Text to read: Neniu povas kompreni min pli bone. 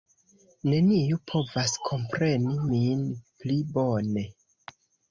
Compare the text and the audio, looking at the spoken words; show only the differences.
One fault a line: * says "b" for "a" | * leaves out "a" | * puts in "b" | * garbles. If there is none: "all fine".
all fine